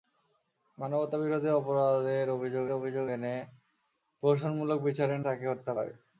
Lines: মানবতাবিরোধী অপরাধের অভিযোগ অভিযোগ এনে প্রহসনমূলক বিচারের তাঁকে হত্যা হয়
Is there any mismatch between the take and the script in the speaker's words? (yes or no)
no